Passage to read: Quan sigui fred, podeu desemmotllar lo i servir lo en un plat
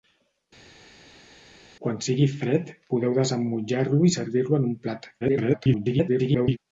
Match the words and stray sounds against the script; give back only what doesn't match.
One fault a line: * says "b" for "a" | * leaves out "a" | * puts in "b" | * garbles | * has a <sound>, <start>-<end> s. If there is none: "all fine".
* garbles